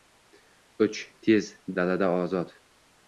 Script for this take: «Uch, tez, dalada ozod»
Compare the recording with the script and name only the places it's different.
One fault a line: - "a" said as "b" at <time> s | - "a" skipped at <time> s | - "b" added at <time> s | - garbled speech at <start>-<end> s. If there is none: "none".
none